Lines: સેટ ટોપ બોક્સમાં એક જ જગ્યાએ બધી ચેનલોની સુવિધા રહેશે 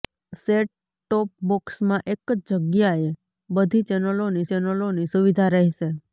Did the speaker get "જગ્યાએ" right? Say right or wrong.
right